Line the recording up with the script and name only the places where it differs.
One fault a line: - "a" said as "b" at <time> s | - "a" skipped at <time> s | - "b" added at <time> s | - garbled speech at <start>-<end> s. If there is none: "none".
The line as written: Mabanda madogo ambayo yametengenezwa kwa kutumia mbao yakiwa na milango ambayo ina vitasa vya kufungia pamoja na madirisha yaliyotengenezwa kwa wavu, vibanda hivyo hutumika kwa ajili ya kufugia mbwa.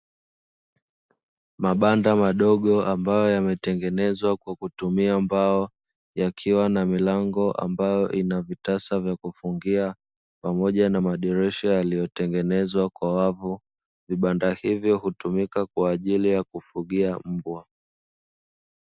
none